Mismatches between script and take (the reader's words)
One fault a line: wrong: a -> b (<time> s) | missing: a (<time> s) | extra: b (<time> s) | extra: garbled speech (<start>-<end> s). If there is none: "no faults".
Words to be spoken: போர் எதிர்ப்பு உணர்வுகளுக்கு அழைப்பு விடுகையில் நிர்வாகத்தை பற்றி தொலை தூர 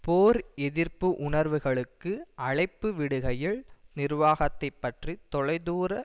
no faults